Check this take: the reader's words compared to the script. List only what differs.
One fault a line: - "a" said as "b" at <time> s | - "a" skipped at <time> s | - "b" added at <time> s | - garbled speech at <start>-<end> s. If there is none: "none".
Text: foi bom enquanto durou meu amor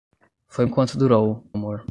- "bom" skipped at 0.7 s
- "meu" skipped at 1.4 s